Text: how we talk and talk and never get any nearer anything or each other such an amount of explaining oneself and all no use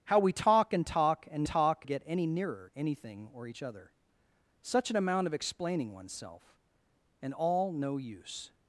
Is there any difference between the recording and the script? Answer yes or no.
yes